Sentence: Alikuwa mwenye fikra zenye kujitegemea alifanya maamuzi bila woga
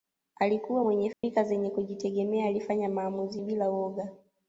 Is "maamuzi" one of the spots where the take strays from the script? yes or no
no